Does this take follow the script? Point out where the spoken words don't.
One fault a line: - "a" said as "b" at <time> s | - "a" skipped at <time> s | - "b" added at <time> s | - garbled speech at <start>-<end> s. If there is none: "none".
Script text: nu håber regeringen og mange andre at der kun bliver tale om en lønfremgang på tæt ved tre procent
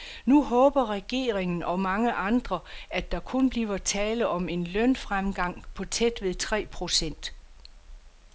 none